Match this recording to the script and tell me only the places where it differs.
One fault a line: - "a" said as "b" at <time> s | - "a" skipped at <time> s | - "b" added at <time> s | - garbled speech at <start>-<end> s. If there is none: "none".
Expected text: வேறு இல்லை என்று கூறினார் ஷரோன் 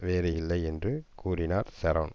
none